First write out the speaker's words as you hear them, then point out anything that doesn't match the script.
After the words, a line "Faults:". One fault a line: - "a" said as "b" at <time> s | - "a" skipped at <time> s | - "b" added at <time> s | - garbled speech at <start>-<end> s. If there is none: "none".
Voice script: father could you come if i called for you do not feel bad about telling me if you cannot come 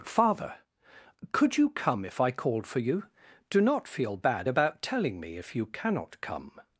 father could you come if i called for you do not feel bad about telling me if you cannot come
Faults:
none